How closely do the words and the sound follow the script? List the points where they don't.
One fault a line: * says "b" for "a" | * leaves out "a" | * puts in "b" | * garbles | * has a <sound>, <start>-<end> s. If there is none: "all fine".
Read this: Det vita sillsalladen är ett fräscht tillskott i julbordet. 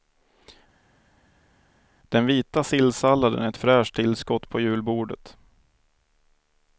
* says "Den" for "Det"
* says "på" for "i"